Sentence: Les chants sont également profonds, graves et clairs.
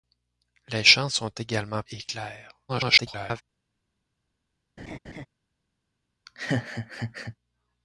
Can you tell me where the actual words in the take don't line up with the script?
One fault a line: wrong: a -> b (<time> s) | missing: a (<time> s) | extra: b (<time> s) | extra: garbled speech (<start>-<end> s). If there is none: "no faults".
missing: profonds graves (1.8 s)
extra: garbled speech (2.7-3.4 s)